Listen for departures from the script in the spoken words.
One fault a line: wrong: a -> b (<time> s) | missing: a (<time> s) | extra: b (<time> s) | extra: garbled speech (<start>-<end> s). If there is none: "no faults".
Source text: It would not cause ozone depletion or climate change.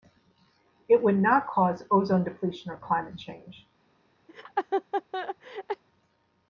no faults